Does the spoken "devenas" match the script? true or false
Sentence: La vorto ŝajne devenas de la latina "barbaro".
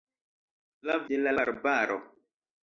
false